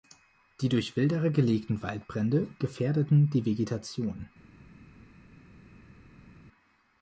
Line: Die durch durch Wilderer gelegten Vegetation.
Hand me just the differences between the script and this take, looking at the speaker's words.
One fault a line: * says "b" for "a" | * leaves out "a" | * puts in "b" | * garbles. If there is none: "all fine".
* leaves out "durch"
* puts in "Waldbrände gefährdeten die"